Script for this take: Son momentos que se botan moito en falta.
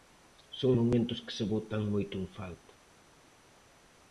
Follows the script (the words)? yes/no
yes